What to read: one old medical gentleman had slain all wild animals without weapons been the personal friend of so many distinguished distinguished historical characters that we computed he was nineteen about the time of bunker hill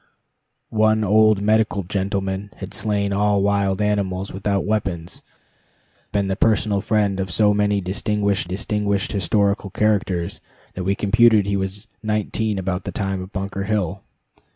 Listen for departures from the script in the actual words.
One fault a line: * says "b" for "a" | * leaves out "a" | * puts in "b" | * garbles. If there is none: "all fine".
all fine